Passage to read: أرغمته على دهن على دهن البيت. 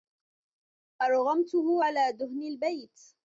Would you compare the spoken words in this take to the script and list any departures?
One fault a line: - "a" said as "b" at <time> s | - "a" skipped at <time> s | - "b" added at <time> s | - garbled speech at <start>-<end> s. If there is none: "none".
- "على دهن" skipped at 2.4 s